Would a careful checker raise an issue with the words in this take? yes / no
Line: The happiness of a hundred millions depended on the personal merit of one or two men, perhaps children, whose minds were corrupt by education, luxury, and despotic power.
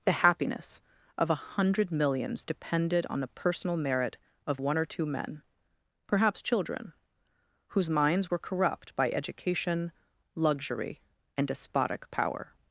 no